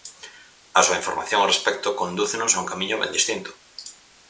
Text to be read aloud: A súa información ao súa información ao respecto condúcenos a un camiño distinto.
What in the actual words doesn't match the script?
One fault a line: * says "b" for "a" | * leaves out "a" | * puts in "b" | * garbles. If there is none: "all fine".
* leaves out "súa información ao"
* puts in "ben"